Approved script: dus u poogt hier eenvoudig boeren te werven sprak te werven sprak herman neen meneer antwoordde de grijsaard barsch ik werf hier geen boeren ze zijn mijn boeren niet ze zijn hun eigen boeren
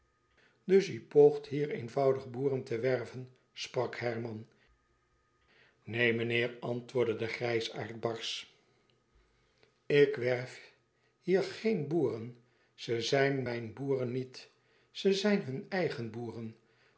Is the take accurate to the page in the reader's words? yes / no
no